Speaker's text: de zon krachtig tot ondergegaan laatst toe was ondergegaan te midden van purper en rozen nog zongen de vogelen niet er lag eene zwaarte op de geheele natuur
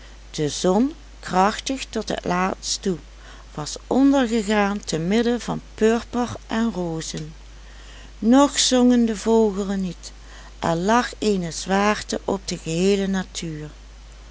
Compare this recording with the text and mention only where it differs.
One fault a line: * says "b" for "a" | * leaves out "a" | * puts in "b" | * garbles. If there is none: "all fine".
* says "het" for "ondergegaan"